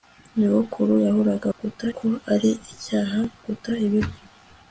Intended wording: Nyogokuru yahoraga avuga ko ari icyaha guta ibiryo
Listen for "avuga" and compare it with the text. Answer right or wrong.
wrong